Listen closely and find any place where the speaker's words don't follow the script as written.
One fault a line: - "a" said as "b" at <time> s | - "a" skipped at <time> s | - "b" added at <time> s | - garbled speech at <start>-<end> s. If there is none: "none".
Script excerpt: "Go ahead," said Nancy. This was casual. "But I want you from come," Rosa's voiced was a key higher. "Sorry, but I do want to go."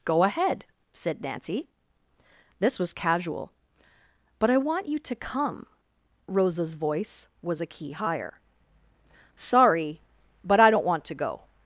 - "from" said as "to" at 5.0 s
- "voiced" said as "voice" at 6.7 s
- "do" said as "don't" at 10.7 s